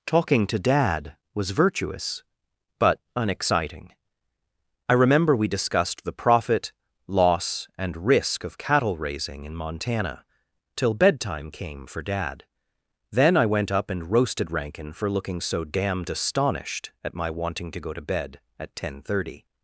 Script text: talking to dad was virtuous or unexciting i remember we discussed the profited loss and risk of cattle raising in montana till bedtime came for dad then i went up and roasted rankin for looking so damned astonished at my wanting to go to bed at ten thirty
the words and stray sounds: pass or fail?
fail